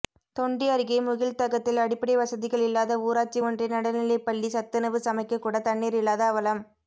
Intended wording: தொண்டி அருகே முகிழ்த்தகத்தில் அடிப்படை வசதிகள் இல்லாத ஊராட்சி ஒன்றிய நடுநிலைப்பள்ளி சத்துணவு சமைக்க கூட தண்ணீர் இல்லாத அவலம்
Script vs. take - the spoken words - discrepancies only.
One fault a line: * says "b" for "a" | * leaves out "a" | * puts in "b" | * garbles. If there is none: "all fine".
all fine